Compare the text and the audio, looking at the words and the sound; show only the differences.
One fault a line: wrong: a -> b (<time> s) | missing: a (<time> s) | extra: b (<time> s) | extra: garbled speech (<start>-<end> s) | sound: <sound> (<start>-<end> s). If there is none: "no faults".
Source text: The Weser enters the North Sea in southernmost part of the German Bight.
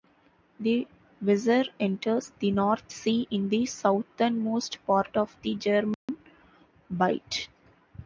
extra: the (3.5 s)
sound: dropout (5.9-6.1 s)